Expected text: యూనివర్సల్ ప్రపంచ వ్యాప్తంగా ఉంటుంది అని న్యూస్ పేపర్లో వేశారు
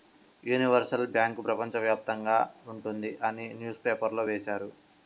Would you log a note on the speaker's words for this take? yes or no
yes